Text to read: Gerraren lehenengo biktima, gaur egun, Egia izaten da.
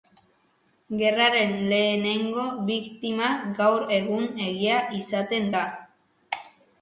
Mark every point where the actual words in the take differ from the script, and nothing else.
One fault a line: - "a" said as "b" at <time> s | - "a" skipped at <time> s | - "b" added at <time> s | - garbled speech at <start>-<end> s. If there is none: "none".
none